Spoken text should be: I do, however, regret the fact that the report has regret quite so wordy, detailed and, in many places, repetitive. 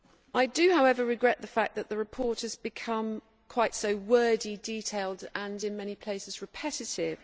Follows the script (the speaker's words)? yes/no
no